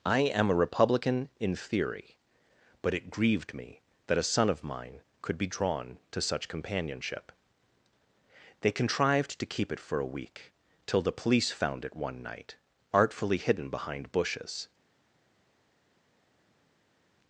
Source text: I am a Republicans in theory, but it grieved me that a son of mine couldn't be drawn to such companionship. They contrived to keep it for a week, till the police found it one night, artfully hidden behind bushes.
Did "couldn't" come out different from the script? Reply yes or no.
yes